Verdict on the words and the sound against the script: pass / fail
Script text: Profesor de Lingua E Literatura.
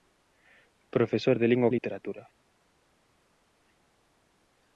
pass